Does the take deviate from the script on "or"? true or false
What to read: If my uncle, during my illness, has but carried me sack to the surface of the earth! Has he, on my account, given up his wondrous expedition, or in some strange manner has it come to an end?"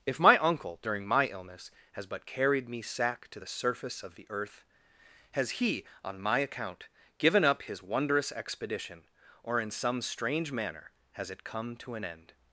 false